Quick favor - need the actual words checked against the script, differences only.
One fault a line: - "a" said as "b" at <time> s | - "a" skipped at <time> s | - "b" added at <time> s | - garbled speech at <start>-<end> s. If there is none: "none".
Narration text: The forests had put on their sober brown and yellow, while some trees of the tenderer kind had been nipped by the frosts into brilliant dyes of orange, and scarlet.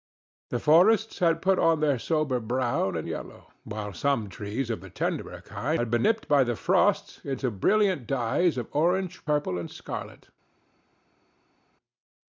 - "purple" added at 9.2 s